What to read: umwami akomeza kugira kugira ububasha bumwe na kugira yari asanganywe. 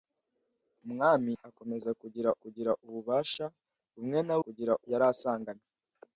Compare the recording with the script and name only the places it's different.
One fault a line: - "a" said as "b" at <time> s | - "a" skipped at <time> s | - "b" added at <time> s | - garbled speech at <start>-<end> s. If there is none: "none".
none